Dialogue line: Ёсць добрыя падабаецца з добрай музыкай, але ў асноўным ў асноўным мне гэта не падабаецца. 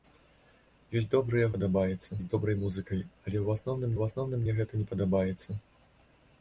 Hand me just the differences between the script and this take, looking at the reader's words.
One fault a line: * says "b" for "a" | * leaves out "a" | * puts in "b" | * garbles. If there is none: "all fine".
all fine